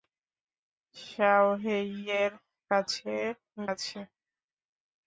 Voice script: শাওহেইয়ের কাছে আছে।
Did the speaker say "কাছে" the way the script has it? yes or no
yes